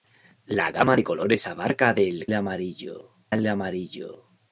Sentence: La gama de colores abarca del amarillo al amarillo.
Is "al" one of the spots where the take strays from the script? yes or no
no